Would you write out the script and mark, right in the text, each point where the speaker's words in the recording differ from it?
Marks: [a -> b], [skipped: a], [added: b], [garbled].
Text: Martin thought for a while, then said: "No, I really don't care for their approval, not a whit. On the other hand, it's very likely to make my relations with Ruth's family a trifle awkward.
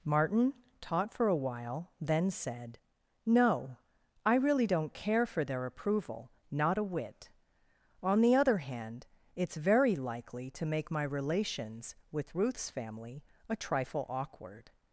Martin [thought -> taught] for a while, then said: "No, I really don't care for their approval, not a whit. On the other hand, it's very likely to make my relations with Ruth's family a trifle awkward.